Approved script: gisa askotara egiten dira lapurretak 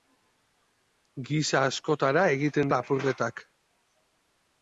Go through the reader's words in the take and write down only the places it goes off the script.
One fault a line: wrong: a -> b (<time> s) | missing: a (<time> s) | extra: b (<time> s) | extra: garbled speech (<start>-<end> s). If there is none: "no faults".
missing: dira (2.7 s)